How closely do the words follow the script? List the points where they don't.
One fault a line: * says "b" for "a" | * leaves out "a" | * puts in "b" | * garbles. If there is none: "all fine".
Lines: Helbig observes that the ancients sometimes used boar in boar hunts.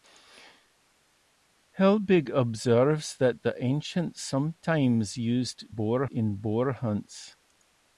all fine